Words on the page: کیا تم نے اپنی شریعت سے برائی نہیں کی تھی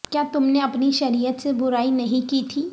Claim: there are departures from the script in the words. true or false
false